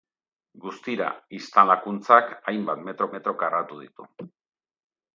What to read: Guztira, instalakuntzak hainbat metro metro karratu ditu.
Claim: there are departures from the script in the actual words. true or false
false